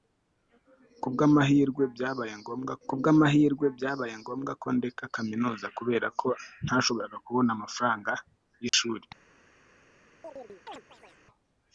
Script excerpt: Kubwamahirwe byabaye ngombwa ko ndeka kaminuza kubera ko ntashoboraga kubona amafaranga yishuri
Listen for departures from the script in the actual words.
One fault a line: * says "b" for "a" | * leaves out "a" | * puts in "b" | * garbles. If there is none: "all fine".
* puts in "kubwamahirwe byabaye ngombwa"